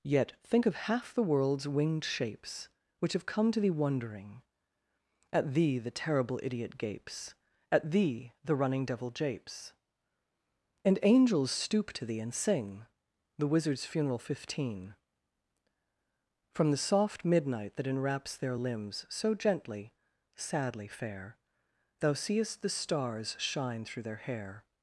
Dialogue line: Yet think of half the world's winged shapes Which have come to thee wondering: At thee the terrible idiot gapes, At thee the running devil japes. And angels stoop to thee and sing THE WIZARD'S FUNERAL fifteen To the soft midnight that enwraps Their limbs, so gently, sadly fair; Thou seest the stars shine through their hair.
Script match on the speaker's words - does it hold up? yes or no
no